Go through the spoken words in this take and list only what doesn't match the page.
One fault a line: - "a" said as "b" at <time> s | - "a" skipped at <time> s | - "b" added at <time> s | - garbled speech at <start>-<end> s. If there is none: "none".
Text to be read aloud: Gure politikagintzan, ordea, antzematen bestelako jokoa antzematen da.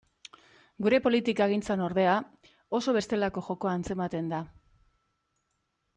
- "antzematen" said as "oso" at 2.8 s